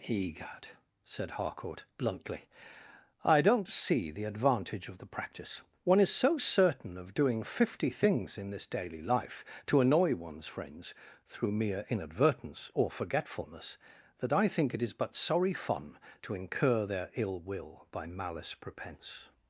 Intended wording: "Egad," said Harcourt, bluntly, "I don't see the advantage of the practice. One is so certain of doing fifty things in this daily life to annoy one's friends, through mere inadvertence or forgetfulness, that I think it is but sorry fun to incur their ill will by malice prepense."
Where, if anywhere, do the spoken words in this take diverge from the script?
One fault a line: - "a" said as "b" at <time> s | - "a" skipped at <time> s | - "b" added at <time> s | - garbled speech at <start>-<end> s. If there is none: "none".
none